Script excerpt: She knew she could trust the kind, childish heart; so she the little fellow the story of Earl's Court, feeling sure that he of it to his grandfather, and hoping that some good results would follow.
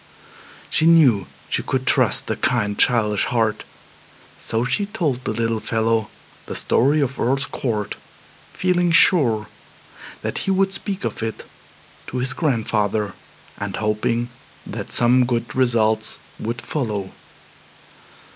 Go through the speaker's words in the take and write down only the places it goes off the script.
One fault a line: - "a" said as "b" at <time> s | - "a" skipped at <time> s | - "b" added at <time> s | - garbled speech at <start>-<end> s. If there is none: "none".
- "told" added at 4.9 s
- "would speak" added at 10.5 s